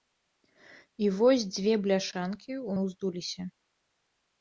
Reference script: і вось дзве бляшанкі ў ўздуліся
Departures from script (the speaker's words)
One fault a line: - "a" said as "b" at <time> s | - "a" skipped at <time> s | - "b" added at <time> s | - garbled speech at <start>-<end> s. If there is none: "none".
none